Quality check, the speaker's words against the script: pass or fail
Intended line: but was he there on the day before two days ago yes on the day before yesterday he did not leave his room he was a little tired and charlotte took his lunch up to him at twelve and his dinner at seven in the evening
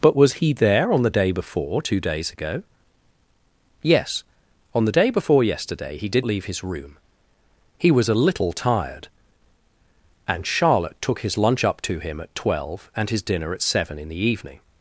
fail